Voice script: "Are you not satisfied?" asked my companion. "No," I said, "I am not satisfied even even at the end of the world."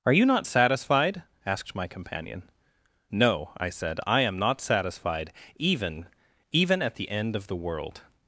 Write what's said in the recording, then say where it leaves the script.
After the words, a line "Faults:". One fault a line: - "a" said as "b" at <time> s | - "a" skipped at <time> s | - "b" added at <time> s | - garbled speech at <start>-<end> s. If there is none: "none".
"Are you not satisfied?" asked my companion. "No," I said, "I am not satisfied even even at the end of the world."
Faults:
none